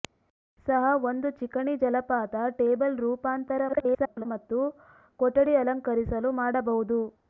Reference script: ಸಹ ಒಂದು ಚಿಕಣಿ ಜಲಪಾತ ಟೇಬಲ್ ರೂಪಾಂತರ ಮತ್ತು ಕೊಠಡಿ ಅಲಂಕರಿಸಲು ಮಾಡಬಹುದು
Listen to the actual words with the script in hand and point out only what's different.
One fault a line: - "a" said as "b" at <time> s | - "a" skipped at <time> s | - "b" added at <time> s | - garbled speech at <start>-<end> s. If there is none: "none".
- garbled speech at 3.7-4.3 s